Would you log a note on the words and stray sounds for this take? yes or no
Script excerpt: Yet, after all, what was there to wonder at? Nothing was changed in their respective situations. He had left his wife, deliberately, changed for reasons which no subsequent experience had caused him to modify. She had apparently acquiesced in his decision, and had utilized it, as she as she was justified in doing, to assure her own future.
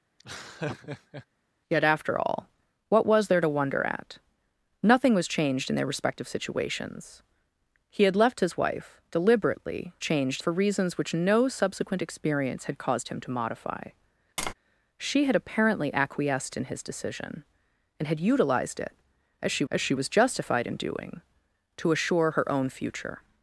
yes